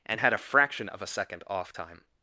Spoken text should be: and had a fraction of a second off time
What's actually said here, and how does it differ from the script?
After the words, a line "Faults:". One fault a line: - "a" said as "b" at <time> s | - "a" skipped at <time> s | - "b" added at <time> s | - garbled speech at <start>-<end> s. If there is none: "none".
and had a fraction of a second off time
Faults:
none